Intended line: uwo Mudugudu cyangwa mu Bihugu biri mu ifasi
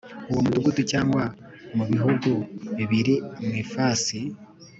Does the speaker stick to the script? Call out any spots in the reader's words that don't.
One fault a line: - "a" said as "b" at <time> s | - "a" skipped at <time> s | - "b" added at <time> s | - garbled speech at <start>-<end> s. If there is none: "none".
none